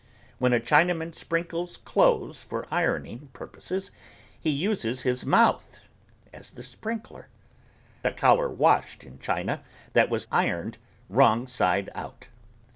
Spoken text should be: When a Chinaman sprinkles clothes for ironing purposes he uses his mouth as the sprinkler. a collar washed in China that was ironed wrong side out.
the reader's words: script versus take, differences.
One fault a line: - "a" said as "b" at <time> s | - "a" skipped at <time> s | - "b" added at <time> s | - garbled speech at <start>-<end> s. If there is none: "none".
none